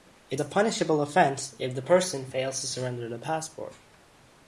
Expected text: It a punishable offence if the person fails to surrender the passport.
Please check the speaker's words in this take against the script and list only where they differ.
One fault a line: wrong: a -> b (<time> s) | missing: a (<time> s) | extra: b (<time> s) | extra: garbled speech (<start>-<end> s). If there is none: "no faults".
no faults